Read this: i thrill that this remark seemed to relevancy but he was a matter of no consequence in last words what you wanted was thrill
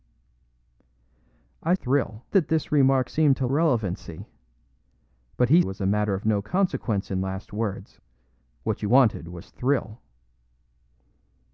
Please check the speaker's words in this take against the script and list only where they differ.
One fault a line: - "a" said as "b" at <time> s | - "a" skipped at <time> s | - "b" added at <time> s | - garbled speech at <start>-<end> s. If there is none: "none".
none